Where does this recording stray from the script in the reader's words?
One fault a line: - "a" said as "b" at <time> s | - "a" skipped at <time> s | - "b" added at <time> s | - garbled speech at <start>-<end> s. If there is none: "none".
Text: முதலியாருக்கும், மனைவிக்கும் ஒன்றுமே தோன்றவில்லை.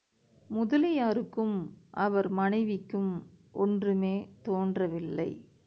- "அவர்" added at 1.9 s